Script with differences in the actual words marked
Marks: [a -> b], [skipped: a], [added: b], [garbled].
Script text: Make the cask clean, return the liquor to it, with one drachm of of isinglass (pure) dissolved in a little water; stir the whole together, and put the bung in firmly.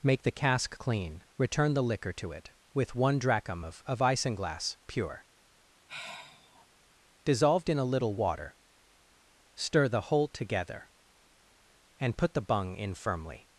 Make the cask clean, return the liquor to it, with one drachm of of isinglass (pure) dissolved in a little water; stir the whole together, and put the bung in firmly.